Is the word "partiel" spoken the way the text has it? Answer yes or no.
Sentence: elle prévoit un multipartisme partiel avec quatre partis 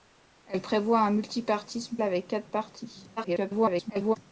no